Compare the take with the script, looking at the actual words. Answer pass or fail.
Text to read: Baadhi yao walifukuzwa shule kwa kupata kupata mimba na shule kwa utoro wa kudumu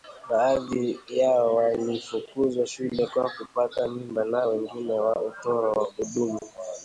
fail